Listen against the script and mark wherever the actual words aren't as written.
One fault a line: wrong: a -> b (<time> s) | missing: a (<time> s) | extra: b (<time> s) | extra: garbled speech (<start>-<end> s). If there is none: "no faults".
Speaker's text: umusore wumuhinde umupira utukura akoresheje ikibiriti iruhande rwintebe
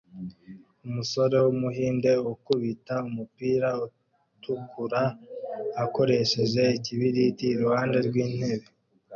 extra: ukubita (2.3 s)